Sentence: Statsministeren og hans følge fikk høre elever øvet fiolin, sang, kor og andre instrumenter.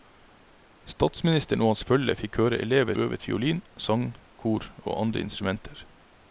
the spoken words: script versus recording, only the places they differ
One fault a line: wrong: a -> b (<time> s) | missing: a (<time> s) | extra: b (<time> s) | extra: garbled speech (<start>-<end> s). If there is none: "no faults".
no faults